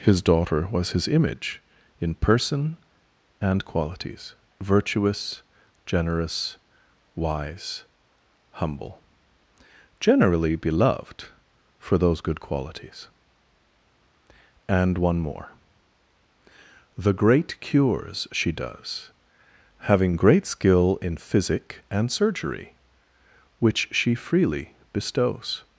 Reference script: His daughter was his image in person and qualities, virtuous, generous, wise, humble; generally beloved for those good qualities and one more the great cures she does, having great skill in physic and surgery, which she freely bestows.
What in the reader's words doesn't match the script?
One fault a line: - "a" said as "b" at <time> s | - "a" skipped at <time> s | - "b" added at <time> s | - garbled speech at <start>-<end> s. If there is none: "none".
none